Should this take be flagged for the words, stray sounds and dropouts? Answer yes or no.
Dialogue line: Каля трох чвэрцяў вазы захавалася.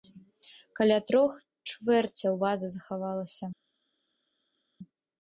no